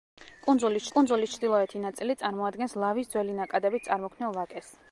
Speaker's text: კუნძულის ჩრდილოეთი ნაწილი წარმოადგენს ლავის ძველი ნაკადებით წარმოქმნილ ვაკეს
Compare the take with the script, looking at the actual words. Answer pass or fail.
fail